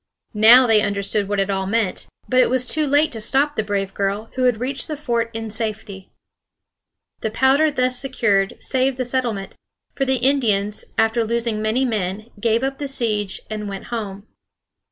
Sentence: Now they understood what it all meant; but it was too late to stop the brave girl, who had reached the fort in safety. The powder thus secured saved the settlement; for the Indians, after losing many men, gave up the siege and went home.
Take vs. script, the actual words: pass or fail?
pass